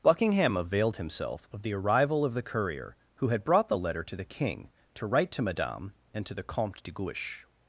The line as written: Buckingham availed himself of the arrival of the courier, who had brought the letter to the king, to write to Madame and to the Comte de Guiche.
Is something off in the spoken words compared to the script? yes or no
no